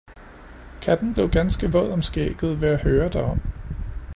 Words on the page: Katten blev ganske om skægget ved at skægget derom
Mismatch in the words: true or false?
true